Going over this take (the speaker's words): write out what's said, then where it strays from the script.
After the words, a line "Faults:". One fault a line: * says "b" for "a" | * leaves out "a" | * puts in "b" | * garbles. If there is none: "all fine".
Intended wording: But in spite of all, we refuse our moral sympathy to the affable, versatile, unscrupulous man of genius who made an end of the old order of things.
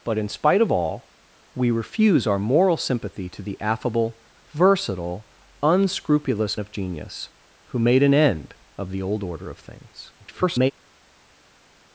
But in spite of all, we refuse our moral sympathy to the affable, versatile, unscrupulous of genius who made an end of the old order of things. [garbled]
Faults:
* leaves out "man"
* garbles